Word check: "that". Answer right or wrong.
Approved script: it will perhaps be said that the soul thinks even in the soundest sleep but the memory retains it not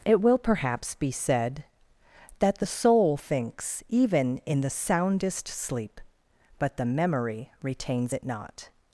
right